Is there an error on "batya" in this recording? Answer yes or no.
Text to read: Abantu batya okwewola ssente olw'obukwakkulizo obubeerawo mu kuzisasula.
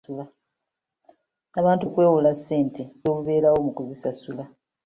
yes